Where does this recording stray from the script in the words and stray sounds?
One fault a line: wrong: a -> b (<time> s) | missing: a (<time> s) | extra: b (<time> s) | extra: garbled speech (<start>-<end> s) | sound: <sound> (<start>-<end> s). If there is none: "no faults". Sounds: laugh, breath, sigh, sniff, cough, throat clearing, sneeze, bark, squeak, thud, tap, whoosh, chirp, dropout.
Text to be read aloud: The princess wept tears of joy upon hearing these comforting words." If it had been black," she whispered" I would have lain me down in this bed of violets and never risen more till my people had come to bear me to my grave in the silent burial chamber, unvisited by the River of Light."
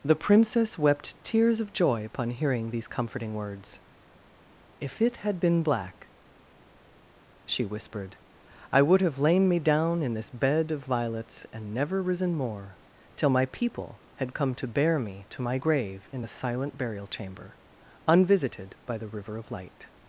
no faults